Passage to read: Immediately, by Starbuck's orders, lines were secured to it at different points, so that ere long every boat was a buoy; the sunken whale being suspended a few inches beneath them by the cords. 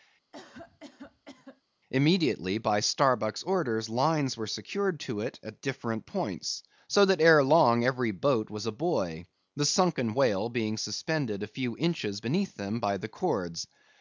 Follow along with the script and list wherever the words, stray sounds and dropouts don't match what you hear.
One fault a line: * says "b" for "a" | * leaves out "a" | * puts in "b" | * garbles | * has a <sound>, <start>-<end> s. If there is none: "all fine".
* has a cough, 0.3-1.6 s